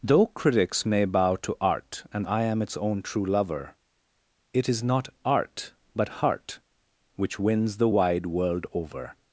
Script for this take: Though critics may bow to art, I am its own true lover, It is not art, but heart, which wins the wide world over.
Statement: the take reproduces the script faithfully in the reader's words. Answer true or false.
false